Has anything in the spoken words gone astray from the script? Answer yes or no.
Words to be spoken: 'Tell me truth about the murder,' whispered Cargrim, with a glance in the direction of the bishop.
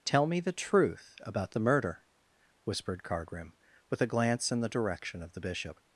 yes